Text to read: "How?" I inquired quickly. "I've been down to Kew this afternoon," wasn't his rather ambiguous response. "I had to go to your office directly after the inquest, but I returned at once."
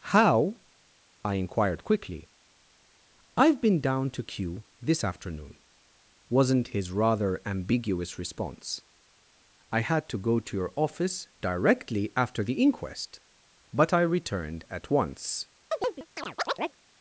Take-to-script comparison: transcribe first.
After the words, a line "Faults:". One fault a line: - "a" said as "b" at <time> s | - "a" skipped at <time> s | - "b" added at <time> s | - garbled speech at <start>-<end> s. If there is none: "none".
"How?" I inquired quickly. "I've been down to Kew this afternoon," wasn't his rather ambiguous response. "I had to go to your office directly after the inquest, but I returned at once."
Faults:
none